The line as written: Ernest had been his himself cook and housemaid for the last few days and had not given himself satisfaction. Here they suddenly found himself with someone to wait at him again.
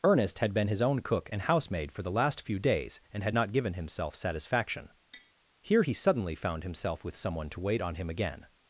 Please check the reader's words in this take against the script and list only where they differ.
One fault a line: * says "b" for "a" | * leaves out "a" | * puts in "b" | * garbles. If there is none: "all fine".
* says "own" for "himself"
* says "he" for "they"
* says "on" for "at"